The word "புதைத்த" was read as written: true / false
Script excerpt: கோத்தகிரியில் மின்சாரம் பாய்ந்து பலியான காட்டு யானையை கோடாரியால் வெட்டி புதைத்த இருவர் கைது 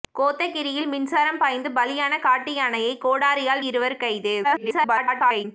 false